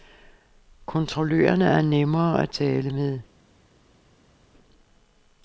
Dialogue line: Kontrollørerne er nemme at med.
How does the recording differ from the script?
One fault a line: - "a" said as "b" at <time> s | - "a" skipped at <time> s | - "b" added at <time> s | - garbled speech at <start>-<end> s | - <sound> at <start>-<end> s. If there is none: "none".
- "tale" added at 2.5 s